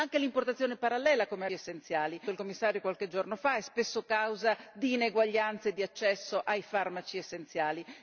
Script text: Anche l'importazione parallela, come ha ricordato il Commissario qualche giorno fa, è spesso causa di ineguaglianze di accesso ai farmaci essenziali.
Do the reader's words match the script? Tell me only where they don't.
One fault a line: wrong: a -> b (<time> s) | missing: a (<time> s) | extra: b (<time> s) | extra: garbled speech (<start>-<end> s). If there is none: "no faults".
wrong: ricordato -> essenziali (1.5 s)